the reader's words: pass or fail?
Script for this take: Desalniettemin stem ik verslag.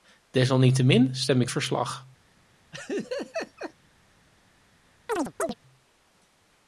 pass